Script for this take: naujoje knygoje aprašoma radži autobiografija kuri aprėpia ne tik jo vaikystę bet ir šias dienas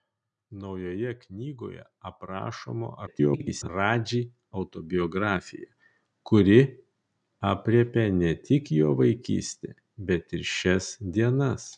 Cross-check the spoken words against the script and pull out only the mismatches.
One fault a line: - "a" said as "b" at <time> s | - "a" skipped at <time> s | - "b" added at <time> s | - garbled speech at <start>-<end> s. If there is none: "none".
- garbled speech at 3.1-3.7 s